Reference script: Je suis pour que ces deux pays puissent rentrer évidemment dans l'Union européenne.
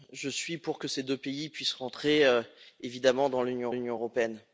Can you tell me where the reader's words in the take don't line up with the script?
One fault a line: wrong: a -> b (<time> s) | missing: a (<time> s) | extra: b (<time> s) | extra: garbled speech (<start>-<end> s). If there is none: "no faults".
extra: l'Union (3.7 s)